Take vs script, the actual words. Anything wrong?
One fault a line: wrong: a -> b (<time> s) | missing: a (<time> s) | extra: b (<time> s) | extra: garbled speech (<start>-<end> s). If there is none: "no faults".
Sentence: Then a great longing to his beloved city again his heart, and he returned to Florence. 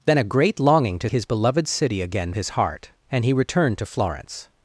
no faults